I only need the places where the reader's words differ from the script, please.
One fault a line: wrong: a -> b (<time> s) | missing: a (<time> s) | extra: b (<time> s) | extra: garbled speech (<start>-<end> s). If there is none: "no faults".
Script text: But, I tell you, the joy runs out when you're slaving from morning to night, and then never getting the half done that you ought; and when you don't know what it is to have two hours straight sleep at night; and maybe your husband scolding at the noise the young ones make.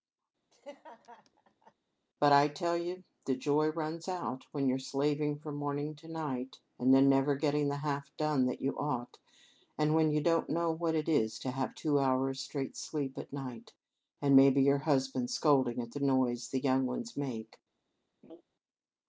no faults